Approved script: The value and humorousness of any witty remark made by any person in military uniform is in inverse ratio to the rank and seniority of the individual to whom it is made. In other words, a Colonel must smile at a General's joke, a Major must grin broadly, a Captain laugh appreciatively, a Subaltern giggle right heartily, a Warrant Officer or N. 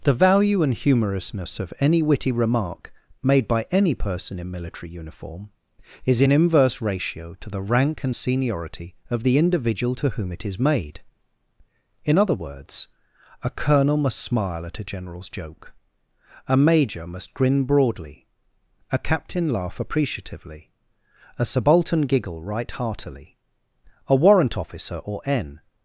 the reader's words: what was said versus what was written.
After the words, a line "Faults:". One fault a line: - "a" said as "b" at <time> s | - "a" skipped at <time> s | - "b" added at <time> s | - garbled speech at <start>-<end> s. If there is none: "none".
The value and humorousness of any witty remark made by any person in military uniform is in inverse ratio to the rank and seniority of the individual to whom it is made. In other words, a Colonel must smile at a General's joke, a Major must grin broadly, a Captain laugh appreciatively, a Subaltern giggle right heartily, a Warrant Officer or N.
Faults:
none